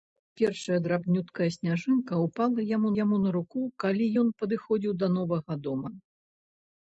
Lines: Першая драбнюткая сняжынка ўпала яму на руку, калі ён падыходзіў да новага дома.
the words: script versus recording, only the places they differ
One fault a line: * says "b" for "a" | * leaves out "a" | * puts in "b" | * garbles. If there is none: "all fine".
* puts in "яму"